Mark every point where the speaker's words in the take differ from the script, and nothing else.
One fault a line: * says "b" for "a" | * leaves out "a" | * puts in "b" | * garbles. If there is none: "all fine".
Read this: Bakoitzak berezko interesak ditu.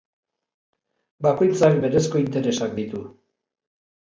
all fine